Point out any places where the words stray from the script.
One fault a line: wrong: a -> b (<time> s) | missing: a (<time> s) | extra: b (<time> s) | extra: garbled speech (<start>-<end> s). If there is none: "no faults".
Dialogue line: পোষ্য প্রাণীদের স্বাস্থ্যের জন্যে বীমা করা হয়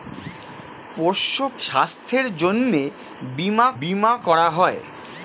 missing: প্রাণীদের (1.4 s)
extra: বীমা (3.8 s)